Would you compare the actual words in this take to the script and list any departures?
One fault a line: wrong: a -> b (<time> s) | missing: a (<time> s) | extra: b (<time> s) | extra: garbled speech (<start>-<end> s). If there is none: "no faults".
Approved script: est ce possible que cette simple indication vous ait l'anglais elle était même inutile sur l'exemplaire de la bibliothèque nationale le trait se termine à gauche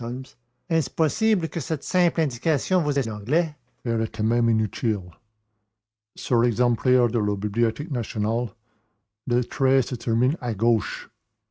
no faults